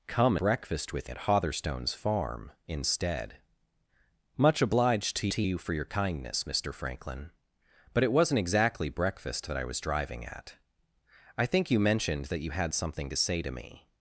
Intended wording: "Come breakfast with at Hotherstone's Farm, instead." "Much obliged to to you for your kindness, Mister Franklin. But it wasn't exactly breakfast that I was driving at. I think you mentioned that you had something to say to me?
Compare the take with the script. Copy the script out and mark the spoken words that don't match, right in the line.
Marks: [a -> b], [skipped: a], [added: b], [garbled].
"Come breakfast with at Hotherstone's Farm, instead." "Much obliged to to you for your kindness, Mister Franklin. But it wasn't exactly breakfast that I was driving at. I think you mentioned that you had something to say to me?